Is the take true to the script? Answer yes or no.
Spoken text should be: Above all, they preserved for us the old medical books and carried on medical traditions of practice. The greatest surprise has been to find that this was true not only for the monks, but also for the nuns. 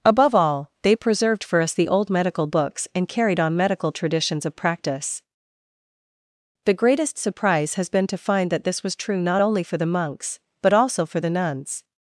yes